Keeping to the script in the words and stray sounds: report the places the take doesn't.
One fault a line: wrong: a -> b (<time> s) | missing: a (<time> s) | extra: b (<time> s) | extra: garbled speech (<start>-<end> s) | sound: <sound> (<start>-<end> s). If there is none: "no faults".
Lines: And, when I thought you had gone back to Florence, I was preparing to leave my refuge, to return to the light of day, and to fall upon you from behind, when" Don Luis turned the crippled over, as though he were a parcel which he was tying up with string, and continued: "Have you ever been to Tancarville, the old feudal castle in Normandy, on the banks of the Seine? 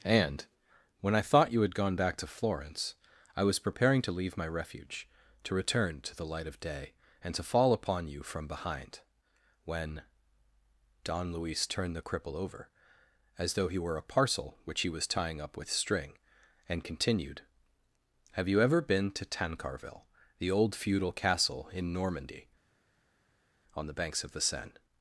wrong: crippled -> cripple (12.0 s)